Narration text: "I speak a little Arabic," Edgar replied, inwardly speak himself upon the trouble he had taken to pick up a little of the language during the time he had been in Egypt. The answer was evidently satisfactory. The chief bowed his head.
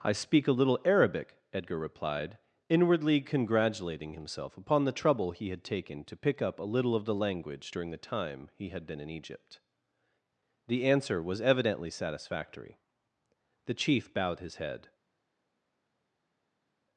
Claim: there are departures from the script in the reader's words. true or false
true